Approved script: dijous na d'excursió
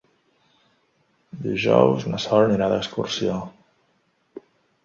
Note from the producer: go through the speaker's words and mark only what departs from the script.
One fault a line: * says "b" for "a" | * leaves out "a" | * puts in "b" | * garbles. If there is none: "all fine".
* puts in "sol anirà"